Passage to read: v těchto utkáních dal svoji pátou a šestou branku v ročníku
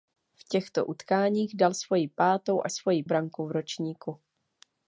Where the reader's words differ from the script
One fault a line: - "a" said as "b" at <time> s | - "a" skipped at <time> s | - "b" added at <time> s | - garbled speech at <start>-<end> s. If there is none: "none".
- "šestou" said as "svoji" at 2.7 s